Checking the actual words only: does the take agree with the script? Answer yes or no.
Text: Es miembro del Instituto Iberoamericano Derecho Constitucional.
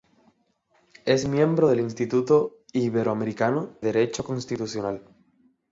yes